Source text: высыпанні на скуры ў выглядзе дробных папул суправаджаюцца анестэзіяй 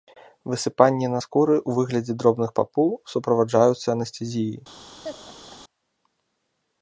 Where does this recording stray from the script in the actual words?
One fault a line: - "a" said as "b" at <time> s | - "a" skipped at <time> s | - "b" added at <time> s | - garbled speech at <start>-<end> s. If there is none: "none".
none